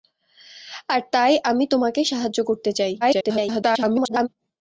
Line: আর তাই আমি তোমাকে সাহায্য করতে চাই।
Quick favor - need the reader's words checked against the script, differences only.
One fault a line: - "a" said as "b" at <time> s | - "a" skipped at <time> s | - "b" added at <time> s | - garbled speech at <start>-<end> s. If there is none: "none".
- garbled speech at 3.0-4.3 s